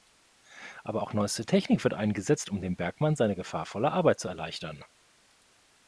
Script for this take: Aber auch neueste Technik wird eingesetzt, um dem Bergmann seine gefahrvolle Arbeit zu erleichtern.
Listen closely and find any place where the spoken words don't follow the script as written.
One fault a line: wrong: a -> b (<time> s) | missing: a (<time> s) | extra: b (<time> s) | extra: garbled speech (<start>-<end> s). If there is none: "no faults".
no faults